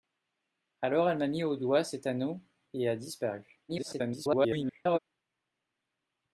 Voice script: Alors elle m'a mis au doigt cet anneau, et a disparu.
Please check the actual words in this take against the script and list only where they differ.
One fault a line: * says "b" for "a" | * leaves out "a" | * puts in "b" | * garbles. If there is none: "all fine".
* garbles